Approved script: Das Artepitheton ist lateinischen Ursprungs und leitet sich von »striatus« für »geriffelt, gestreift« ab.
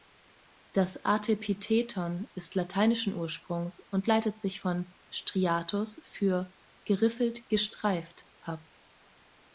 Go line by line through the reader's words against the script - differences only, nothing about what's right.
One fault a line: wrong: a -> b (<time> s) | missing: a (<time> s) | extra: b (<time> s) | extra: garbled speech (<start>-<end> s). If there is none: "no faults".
no faults